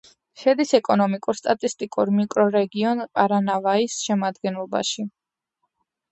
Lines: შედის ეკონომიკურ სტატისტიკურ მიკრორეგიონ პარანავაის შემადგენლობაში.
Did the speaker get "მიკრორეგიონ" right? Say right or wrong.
right